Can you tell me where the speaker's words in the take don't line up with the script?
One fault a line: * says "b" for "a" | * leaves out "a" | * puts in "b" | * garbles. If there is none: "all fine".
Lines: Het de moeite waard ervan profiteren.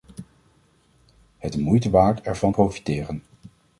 all fine